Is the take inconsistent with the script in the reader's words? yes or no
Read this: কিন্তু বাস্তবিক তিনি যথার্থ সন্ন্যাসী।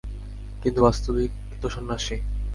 yes